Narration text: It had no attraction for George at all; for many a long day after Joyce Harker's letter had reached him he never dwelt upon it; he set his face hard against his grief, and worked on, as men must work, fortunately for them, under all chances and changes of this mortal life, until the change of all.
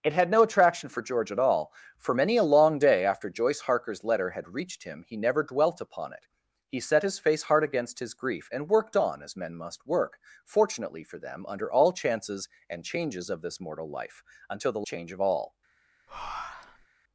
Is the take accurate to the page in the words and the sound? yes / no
no